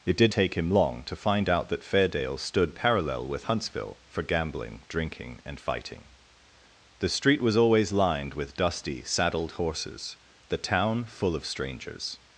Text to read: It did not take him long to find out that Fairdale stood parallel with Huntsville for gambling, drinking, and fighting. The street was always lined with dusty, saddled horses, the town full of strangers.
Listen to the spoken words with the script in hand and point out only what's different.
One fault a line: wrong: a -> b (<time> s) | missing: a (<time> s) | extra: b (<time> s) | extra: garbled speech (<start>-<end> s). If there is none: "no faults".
missing: not (0.3 s)